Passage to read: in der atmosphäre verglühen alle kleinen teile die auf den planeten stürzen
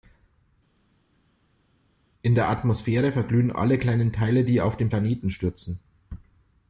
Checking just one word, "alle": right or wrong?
right